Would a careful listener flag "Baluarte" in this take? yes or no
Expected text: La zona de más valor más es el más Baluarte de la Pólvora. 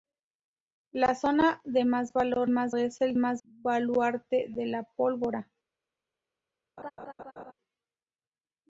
no